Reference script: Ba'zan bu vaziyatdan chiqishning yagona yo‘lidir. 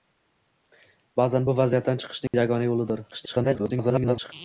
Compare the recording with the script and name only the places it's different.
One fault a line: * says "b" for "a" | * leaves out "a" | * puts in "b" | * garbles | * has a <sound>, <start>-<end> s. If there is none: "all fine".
* has a dropout, 2.3-2.3 s
* garbles